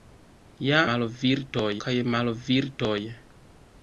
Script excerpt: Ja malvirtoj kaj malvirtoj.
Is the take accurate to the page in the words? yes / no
yes